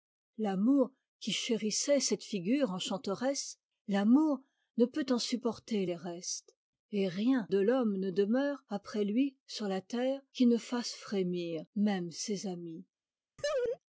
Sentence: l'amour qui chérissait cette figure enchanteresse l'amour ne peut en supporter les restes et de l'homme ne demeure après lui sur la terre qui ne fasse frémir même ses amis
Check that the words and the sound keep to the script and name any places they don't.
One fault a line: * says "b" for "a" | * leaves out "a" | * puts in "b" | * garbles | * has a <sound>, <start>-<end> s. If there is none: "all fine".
* puts in "rien"
* has a laugh, 13.4-13.8 s